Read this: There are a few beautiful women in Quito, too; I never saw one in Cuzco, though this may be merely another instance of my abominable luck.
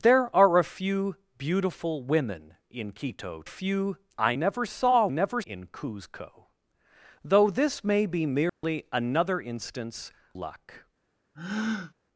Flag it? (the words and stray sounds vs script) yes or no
yes